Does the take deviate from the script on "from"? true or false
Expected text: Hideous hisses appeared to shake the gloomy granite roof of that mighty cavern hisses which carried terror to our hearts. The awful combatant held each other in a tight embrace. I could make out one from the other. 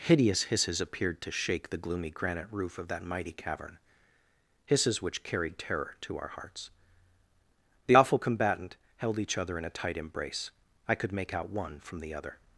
false